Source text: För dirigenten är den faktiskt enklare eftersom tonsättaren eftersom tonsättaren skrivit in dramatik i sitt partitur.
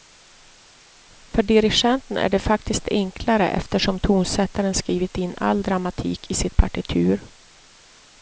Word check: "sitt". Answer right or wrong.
right